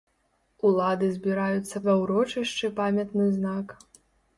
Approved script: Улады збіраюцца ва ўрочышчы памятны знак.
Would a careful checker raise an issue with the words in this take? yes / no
no